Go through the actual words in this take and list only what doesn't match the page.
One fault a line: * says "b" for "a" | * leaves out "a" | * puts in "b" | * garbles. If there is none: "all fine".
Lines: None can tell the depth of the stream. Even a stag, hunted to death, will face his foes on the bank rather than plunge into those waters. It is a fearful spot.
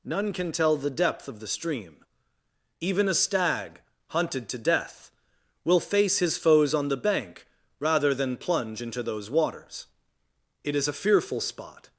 all fine